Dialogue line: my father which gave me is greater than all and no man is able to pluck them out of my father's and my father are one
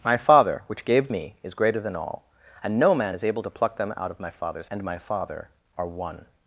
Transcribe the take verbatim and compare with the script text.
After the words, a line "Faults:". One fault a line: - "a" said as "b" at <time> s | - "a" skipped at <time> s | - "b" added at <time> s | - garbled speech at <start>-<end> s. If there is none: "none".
my father which gave me is greater than all and no man is able to pluck them out of my father's and my father are one
Faults:
none